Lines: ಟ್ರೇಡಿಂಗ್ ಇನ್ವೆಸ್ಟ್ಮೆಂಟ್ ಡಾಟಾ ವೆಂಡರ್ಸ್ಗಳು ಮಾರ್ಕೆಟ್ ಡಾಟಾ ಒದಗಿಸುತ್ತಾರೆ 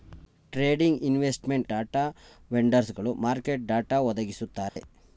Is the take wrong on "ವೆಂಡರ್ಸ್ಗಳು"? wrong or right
right